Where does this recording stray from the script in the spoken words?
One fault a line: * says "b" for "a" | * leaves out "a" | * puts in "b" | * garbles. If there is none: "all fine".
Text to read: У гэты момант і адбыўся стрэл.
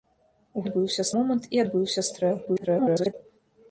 * says "адбыўся" for "гэты"
* garbles